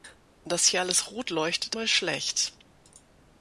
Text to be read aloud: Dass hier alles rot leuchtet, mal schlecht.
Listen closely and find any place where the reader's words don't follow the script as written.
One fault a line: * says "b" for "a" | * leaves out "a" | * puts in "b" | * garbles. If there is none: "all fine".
all fine